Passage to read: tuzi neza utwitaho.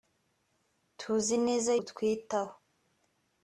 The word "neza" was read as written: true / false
true